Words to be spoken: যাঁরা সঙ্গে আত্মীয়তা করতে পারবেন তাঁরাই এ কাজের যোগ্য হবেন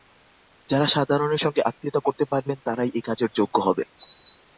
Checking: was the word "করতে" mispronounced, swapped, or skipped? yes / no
no